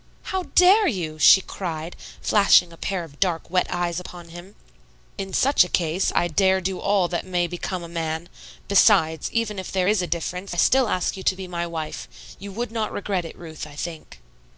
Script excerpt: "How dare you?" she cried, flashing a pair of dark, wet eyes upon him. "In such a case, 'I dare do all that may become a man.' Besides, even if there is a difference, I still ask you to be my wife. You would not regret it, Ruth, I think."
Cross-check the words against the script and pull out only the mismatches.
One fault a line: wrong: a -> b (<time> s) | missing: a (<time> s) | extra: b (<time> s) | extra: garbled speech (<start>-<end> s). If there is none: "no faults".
no faults